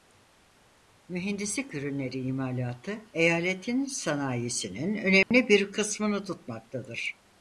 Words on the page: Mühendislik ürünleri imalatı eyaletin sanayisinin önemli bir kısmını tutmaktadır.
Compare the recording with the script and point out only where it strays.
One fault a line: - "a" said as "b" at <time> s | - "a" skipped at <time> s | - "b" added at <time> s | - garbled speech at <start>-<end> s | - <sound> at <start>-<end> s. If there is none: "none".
- dropout at 5.2-5.3 s